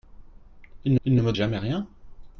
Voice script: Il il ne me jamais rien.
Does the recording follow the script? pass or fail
pass